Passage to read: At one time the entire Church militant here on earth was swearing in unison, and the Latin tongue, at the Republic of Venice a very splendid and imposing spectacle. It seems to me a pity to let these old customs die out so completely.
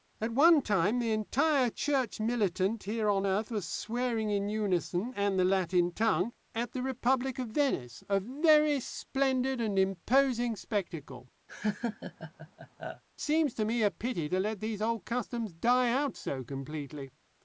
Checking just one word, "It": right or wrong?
wrong